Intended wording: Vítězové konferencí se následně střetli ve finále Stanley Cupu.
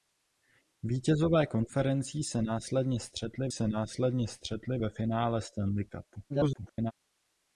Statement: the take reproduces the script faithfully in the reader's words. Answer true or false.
false